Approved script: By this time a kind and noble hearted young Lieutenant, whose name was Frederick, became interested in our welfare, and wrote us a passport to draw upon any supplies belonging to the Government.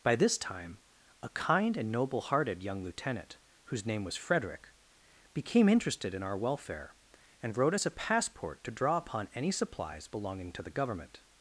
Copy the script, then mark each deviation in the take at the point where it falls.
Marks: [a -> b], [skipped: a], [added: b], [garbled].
By this time a kind and noble hearted young Lieutenant, whose name was Frederick, became interested in our welfare, and wrote us a passport to draw upon any supplies belonging to the Government.